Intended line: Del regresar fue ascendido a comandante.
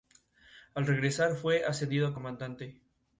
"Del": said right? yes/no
no